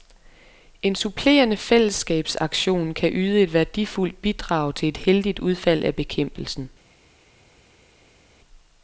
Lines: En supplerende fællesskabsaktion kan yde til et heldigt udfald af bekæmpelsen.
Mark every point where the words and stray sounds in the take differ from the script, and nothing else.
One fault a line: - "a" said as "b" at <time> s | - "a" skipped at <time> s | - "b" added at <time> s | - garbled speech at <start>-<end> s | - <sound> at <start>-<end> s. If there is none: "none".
- "et værdifuldt bidrag" added at 3.4 s